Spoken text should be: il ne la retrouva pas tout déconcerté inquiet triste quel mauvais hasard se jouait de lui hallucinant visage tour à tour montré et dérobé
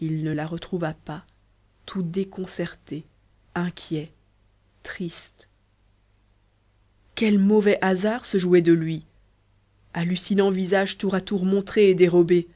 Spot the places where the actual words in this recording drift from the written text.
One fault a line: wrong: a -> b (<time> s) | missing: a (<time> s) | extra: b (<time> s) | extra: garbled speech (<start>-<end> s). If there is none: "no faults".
no faults